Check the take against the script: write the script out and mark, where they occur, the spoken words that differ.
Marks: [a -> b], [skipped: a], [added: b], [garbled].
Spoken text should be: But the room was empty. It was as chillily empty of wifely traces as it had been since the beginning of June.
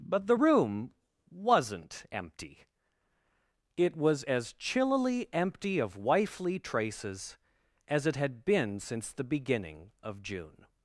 But the room [was -> wasn't] empty. It was as chillily empty of wifely traces as it had been since the beginning of June.